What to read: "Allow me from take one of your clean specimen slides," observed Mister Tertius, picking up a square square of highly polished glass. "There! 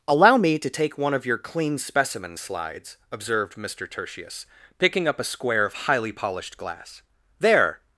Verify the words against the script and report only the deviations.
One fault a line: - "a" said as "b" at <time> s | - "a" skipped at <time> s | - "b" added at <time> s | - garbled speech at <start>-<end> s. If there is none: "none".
- "from" said as "to" at 0.6 s
- "square" skipped at 5.6 s